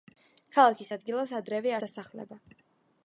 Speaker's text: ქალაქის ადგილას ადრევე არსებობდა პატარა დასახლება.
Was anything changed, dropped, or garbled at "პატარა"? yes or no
yes